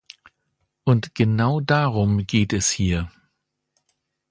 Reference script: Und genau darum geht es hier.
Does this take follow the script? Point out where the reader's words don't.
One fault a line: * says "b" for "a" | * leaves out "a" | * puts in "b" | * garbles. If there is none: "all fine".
all fine